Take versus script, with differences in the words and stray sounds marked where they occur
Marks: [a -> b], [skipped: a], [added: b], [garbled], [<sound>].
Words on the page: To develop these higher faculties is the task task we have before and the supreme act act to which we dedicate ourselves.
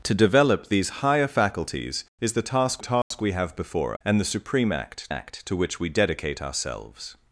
To develop these higher faculties is the task task [dropout] we have before and the supreme act act to which we dedicate ourselves.